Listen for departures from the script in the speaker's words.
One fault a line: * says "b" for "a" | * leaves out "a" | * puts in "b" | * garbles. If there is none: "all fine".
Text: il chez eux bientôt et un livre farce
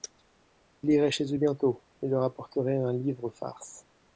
* puts in "irait"
* puts in "leur apporterait"